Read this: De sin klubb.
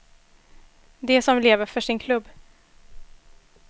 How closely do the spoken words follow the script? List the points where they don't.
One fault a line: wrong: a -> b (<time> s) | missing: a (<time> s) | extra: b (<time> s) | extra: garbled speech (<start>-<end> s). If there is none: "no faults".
extra: som lever för (1.2 s)